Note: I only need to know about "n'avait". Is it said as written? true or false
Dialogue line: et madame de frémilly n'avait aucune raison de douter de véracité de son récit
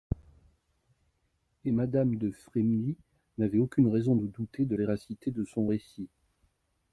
true